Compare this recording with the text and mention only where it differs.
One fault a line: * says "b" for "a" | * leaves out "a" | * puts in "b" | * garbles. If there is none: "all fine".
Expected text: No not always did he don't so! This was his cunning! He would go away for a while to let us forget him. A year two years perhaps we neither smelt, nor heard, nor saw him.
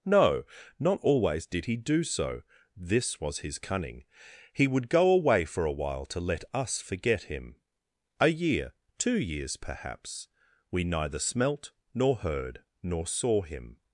* says "do" for "don't"